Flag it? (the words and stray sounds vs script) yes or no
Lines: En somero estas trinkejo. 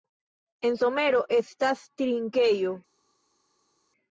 no